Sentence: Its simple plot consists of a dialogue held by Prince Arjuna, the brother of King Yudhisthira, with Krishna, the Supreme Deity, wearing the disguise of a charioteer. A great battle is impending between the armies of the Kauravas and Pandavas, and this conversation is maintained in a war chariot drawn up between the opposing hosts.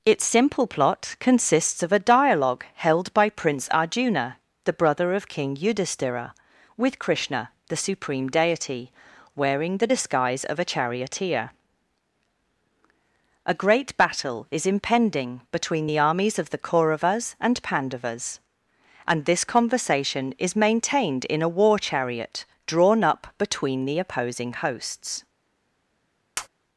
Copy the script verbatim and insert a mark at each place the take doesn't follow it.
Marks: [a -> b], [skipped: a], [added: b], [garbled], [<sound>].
Its simple plot consists of a dialogue held by Prince Arjuna, the brother of King Yudhisthira, with Krishna, the Supreme Deity, wearing the disguise of a charioteer. A great battle is impending between the armies of the Kauravas and Pandavas, and this conversation is maintained in a war chariot drawn up between the opposing hosts. [tap]